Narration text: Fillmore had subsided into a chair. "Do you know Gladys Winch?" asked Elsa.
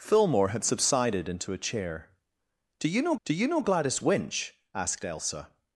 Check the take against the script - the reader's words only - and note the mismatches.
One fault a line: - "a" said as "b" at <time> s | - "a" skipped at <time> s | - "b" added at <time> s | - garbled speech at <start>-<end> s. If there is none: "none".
- "do you know" added at 3.2 s